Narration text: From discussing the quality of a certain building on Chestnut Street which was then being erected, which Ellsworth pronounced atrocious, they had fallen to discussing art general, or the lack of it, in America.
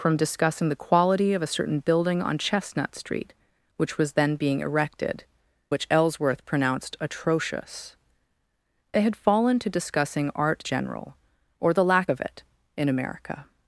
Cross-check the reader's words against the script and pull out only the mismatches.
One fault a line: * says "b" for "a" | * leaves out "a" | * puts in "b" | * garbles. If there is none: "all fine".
all fine